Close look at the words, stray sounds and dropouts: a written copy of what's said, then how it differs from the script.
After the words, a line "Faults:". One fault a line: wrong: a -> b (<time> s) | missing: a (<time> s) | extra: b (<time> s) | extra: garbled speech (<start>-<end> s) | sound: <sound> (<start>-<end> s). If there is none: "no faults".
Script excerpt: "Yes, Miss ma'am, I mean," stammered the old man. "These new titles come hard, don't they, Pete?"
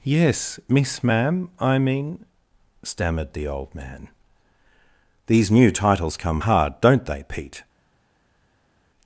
"Yes, Miss ma'am, I mean," stammered the old man. "These new titles come hard, don't they, Pete?"
Faults:
no faults